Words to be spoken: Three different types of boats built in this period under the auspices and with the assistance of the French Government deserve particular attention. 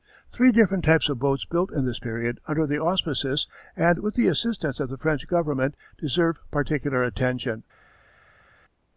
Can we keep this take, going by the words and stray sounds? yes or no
yes